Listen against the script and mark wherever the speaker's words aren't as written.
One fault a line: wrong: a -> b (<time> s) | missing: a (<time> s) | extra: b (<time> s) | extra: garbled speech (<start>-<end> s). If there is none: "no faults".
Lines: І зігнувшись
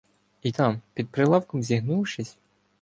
extra: там під прилавком (0.4 s)